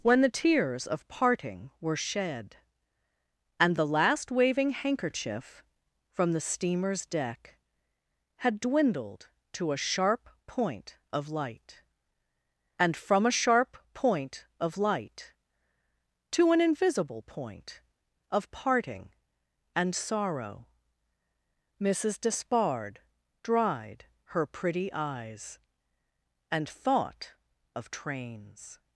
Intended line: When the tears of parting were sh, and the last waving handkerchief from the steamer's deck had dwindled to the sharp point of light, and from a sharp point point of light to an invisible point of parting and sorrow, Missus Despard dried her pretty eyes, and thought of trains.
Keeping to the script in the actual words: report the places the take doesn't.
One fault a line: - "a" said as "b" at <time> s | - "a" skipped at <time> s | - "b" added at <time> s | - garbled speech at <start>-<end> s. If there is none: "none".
- "sh" said as "shed" at 1.9 s
- "the" said as "a" at 9.7 s
- "point" skipped at 14.4 s